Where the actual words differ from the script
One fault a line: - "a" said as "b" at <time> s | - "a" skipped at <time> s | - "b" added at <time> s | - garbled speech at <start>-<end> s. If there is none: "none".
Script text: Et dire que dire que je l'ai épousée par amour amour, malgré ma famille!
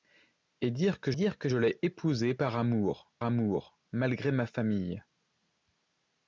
none